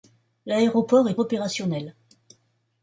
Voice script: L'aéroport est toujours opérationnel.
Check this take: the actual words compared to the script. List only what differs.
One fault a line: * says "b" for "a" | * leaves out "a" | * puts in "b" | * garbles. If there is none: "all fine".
* leaves out "toujours"